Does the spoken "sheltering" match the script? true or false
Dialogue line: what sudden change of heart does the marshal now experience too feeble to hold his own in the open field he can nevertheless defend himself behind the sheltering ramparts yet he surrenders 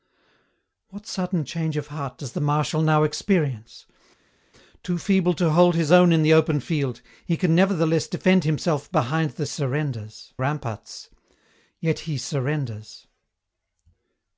false